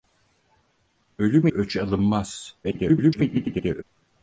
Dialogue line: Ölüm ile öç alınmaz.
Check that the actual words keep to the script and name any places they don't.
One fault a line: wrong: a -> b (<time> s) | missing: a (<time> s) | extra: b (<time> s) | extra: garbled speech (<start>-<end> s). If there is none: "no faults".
missing: ile (1.5 s)
extra: garbled speech (2.6-3.8 s)